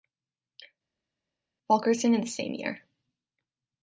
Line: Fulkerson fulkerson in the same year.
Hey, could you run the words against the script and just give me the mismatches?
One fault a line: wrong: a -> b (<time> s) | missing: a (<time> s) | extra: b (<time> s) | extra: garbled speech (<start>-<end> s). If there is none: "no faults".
missing: fulkerson (2.1 s)